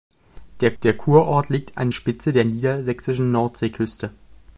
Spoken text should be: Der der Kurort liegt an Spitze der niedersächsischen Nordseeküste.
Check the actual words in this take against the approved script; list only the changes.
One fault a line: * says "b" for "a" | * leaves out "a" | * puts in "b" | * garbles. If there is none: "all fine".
all fine